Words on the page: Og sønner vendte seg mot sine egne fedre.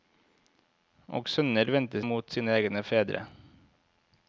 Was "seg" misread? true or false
true